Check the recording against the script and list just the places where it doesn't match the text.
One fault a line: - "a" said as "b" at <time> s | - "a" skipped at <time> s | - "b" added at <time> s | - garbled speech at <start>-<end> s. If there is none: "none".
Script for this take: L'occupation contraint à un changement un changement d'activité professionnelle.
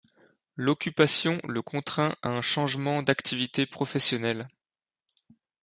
- "le" added at 1.5 s
- "un changement" skipped at 3.0 s